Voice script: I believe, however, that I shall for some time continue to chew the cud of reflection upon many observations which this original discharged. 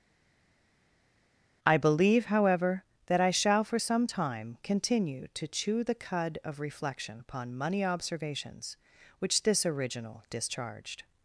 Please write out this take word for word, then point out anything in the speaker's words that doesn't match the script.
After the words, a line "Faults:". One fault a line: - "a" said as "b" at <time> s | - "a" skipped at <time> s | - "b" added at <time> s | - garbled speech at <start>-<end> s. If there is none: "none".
I believe, however, that I shall for some time continue to chew the cud of reflection upon money observations which this original discharged.
Faults:
- "many" said as "money" at 7.6 s